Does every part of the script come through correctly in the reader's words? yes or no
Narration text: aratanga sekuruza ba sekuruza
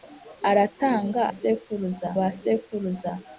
yes